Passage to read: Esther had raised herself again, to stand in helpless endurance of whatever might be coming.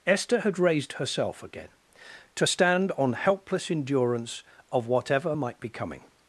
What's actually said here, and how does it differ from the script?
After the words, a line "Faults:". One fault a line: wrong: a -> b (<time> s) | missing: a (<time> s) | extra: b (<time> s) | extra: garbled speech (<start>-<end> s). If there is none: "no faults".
Esther had raised herself again, to stand on helpless endurance of whatever might be coming.
Faults:
wrong: in -> on (2.9 s)